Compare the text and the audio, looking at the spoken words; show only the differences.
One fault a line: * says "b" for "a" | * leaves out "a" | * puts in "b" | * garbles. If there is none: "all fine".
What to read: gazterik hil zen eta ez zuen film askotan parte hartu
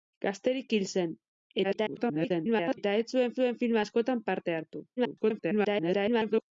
* garbles
* puts in "zuen"
* garbles